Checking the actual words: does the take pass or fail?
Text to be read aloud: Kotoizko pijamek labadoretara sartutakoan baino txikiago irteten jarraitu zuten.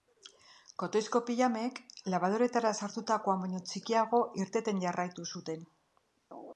pass